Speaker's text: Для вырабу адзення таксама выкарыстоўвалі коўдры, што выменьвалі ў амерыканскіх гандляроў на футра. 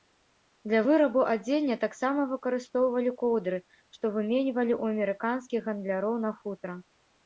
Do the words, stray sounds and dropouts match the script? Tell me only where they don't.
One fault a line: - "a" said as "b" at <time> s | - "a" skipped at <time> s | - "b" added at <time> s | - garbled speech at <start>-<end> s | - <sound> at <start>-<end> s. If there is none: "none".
none